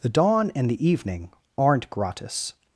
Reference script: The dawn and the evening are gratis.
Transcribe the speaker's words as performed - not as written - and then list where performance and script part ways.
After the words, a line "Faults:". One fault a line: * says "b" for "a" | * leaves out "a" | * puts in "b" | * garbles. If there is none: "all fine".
The dawn and the evening aren't gratis.
Faults:
* says "aren't" for "are"